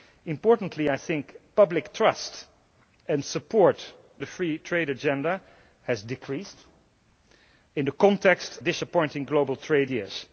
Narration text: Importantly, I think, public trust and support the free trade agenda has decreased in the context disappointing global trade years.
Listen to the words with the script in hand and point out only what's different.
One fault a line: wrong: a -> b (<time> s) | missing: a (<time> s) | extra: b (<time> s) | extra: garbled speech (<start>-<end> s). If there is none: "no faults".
no faults